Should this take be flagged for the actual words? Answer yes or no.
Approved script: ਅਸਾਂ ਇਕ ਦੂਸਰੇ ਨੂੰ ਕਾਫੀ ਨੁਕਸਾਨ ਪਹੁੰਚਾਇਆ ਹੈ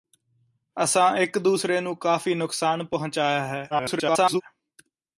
yes